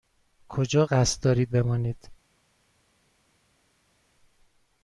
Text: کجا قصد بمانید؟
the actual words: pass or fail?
fail